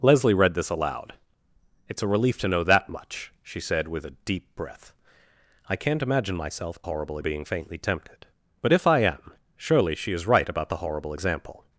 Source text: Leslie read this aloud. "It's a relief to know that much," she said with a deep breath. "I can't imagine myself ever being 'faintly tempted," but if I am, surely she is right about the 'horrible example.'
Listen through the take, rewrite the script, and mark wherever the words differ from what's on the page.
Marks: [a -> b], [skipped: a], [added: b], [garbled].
Leslie read this aloud. "It's a relief to know that much," she said with a deep breath. "I can't imagine myself [ever -> horrible] being 'faintly tempted," but if I am, surely she is right about the 'horrible example.'